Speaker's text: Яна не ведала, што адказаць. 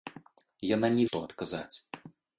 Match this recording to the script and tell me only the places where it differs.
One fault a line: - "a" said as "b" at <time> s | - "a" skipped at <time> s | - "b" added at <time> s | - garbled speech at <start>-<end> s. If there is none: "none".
- "ведала" skipped at 1.1 s